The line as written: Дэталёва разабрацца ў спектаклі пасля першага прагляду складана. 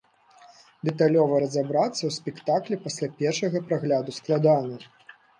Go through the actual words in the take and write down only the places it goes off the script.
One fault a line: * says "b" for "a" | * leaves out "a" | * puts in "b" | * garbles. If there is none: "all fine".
all fine